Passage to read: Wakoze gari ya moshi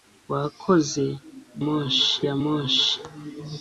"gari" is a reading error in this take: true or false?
true